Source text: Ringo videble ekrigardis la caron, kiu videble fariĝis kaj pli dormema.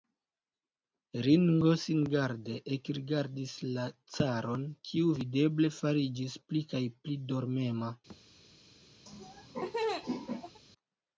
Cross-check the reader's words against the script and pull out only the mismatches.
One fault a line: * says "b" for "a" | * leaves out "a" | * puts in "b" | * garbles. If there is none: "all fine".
* says "singarde" for "videble"
* puts in "pli"